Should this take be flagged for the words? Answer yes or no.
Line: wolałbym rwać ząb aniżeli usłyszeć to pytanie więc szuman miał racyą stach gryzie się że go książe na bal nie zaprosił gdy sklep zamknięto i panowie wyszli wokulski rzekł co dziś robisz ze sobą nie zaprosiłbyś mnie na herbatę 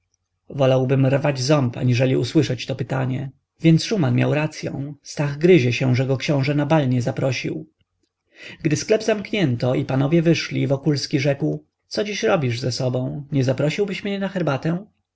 no